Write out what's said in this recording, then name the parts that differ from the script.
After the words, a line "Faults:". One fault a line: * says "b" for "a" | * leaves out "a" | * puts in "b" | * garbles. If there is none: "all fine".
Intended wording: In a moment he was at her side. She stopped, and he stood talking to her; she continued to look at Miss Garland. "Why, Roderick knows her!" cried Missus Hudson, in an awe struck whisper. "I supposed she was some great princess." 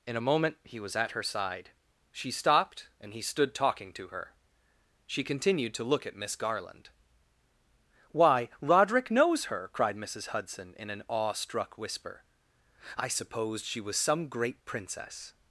In a moment he was at her side. She stopped, and he stood talking to her; she continued to look at Miss Garland. "Why, Roderick knows her!" cried Missus Hudson, in an awe struck whisper. "I supposed she was some great princess."
Faults:
all fine